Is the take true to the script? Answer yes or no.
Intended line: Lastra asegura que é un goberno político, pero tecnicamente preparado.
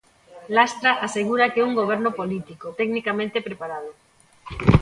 no